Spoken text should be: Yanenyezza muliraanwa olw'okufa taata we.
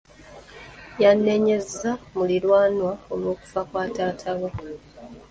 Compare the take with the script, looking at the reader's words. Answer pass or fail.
fail